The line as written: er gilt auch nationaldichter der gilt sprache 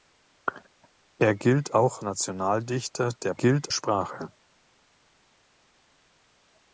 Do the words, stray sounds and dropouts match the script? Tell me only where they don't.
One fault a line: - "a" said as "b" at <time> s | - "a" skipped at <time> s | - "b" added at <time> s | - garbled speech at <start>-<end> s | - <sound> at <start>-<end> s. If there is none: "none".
none